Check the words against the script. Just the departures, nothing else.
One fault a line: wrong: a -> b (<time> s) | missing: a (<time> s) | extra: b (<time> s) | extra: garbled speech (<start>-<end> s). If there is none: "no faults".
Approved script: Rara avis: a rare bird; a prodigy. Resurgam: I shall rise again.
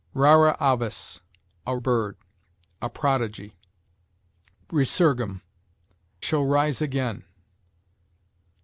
missing: rare (1.8 s)
missing: I (5.4 s)